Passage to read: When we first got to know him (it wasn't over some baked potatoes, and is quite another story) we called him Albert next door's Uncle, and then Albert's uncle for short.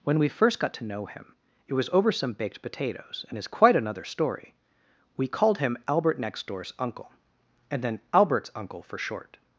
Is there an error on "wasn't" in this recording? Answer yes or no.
yes